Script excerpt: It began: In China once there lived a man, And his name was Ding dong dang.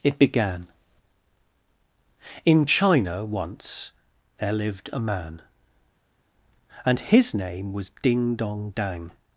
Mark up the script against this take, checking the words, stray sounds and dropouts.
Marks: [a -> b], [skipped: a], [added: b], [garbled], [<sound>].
It began: In China once there lived a man, And his name was Ding dong dang.